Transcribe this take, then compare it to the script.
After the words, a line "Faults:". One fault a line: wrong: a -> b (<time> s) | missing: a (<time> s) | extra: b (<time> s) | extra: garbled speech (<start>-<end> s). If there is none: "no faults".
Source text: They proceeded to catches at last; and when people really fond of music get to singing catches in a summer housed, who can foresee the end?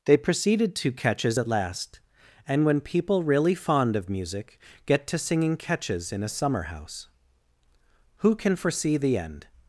They proceeded to catches at last; and when people really fond of music get to singing catches in a summer house, who can foresee the end?
Faults:
wrong: housed -> house (6.6 s)